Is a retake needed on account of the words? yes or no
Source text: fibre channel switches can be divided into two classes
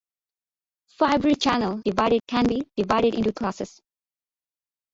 yes